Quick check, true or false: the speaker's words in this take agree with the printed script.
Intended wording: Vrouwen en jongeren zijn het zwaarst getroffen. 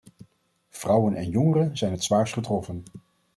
true